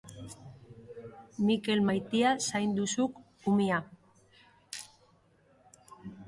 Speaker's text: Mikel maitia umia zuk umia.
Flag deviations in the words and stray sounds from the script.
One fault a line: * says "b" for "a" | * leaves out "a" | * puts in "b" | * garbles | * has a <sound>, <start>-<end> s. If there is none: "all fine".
* says "zaindu" for "umia"